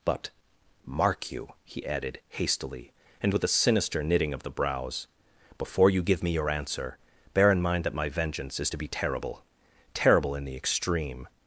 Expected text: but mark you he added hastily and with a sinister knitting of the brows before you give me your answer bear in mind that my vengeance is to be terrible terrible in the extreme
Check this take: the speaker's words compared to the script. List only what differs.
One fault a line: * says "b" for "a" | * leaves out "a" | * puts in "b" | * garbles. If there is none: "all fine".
all fine